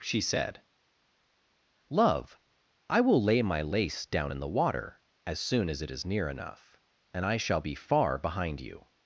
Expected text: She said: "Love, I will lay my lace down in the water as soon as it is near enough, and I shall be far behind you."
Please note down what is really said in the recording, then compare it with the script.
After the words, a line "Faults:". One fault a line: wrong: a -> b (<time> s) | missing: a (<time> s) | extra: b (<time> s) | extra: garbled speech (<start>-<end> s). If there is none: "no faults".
She said: "Love, I will lay my lace down in the water as soon as it is near enough, and I shall be far behind you."
Faults:
no faults